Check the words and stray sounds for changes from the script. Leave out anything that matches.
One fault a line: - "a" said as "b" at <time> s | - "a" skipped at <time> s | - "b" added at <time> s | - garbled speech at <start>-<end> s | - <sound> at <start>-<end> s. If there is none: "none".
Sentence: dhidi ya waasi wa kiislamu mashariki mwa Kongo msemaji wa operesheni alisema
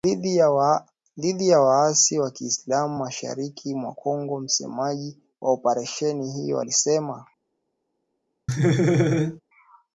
- "hiyo" added at 6.3 s
- laugh at 8.5-9.4 s